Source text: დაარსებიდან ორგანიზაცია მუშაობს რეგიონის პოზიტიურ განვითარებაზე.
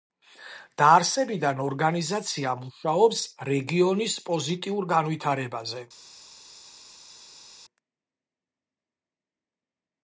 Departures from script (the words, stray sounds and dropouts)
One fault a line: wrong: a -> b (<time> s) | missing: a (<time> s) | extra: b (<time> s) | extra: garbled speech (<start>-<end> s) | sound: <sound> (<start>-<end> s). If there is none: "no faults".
no faults